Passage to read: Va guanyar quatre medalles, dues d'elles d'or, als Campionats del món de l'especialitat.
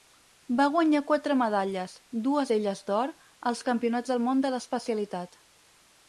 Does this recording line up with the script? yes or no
yes